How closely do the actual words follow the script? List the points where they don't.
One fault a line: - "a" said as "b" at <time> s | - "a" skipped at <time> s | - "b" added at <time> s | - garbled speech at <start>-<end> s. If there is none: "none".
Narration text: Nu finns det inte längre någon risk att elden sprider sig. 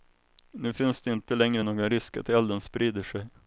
none